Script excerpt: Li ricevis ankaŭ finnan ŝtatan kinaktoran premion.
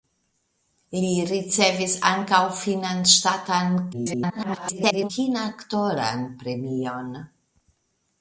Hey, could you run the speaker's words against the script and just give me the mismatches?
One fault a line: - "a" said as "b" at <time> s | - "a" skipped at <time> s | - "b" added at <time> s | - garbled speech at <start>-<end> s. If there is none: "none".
- garbled speech at 3.9-5.1 s